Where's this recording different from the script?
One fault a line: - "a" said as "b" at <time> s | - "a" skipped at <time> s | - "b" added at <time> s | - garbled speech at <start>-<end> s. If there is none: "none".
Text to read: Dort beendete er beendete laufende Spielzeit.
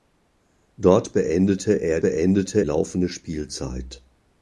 none